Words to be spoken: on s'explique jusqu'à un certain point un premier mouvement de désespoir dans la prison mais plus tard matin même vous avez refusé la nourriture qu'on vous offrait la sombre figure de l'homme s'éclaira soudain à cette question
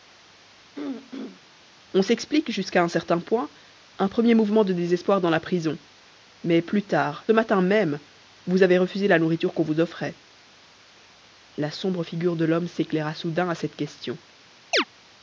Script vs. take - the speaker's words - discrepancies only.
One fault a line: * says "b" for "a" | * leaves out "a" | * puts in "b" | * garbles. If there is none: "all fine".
all fine